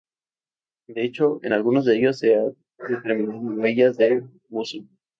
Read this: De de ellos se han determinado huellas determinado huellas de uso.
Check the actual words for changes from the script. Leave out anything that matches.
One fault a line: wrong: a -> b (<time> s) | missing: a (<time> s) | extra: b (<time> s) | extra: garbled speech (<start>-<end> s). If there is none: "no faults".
extra: hecho en algunos (1.0 s)
missing: determinado huellas (4.0 s)